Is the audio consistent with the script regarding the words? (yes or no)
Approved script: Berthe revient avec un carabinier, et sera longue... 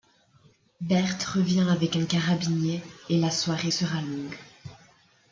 no